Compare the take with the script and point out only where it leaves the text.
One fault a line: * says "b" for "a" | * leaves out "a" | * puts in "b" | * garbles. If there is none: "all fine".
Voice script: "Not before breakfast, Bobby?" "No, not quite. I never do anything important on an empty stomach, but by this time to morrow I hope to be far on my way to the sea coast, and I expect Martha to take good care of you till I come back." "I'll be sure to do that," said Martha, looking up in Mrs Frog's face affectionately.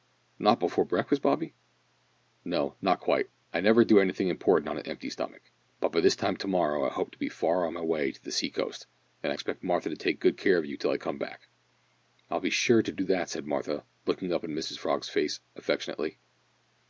all fine